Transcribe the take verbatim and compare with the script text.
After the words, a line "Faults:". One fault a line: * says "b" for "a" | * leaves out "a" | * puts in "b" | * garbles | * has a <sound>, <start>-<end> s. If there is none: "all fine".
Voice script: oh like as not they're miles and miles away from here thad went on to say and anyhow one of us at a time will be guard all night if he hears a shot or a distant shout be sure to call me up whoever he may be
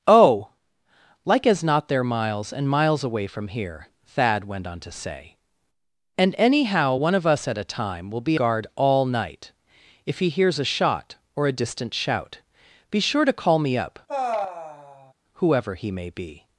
oh like as not they're miles and miles away from here thad went on to say and anyhow one of us at a time will be guard all night if he hears a shot or a distant shout be sure to call me up whoever he may be
Faults:
* has a sigh, 14.1-15.1 s